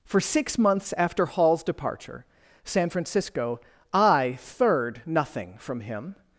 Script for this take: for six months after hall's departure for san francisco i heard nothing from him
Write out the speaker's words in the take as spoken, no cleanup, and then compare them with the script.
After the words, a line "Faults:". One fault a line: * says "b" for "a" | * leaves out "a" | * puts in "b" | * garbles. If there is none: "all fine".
for six months after hall's departure san francisco i third nothing from him
Faults:
* leaves out "for"
* says "third" for "heard"